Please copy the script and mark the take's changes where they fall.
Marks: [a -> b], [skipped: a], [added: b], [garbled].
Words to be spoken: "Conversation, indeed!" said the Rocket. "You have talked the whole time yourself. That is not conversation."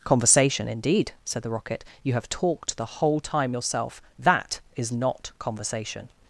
"Conversation, indeed!" said the Rocket. "You have talked the whole time yourself. That is not conversation."